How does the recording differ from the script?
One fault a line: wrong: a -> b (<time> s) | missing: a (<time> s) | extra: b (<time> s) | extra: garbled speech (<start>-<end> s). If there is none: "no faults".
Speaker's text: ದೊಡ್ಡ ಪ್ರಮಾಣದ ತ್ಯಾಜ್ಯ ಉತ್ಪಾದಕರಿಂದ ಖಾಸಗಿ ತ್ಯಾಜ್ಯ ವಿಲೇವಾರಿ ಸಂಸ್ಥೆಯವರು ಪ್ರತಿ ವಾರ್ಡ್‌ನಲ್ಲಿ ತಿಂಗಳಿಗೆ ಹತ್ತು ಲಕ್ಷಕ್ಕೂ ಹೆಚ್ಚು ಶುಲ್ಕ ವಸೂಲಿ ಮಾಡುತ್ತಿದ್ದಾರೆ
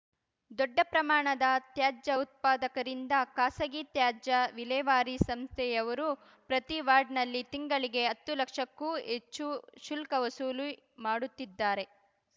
no faults